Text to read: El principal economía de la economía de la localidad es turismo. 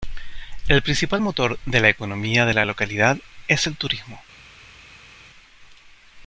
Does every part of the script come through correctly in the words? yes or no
no